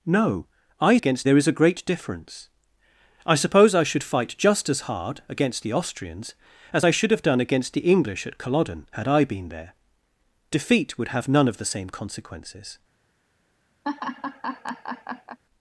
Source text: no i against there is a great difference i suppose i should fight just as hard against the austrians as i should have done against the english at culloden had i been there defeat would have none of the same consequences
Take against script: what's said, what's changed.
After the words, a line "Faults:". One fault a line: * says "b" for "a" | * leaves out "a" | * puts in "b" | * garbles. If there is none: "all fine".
no i against there is a great difference i suppose i should fight just as hard against the austrians as i should have done against the english at culloden had i been there defeat would have none of the same consequences
Faults:
all fine